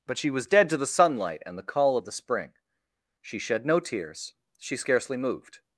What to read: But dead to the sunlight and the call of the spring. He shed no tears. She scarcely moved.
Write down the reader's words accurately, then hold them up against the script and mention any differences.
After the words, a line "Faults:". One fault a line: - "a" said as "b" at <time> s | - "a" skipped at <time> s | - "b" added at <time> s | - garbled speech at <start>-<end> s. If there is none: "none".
But she was dead to the sunlight and the call of the spring. She shed no tears. She scarcely moved.
Faults:
- "she was" added at 0.2 s
- "He" said as "She" at 3.2 s